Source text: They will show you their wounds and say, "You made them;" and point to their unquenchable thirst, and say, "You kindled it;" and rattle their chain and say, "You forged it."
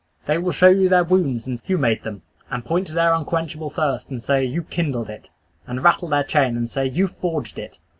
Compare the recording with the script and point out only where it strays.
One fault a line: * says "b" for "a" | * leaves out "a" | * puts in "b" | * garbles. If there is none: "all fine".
* leaves out "say"